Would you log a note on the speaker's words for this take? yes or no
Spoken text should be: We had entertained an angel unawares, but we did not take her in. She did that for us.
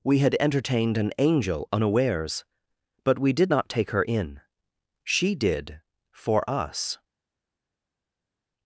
yes